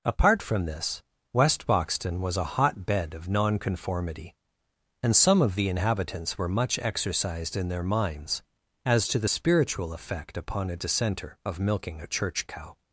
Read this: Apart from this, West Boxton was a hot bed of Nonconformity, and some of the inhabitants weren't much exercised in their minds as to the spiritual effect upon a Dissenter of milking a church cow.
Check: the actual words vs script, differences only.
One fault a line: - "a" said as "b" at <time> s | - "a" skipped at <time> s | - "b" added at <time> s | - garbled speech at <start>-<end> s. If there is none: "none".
- "weren't" said as "were" at 6.4 s